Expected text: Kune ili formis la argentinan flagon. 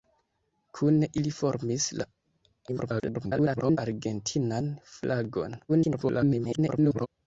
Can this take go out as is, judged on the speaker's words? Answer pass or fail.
fail